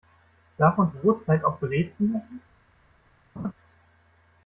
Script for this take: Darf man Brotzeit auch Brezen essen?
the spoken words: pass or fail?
pass